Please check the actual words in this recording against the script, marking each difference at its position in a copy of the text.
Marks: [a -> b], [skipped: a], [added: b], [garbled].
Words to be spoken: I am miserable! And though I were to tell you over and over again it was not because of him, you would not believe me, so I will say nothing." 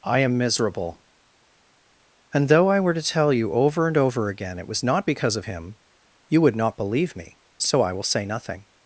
I am miserable! And though I were to tell you over and over again it was not because of him, you would not believe me, so I will say nothing."